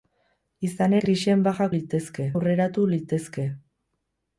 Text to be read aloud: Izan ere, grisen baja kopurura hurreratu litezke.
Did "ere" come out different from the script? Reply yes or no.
yes